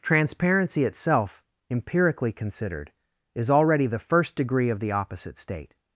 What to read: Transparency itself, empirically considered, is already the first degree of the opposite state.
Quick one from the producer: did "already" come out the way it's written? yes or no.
yes